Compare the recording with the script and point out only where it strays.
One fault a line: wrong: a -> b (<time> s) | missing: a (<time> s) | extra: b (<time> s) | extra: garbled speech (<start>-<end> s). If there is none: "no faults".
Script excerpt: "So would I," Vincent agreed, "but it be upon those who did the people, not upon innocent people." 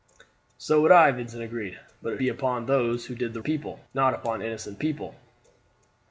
no faults